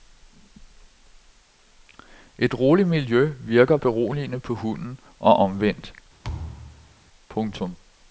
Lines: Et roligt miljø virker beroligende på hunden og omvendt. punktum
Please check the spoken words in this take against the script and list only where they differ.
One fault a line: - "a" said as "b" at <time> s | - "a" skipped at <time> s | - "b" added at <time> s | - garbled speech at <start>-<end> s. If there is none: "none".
none